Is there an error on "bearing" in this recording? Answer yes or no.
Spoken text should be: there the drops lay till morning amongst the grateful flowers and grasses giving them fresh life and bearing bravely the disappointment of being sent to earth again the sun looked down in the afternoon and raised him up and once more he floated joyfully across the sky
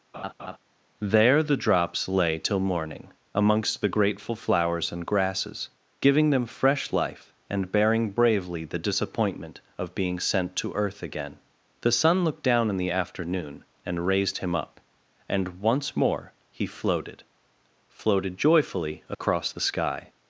no